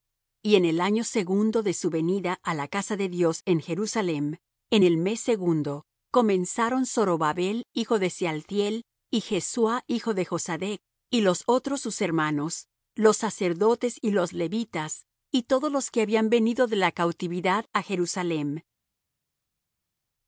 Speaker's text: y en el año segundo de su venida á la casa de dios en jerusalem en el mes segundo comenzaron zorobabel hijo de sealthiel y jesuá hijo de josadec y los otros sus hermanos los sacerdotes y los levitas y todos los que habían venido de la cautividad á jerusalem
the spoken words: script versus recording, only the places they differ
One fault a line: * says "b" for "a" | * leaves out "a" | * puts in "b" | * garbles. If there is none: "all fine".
all fine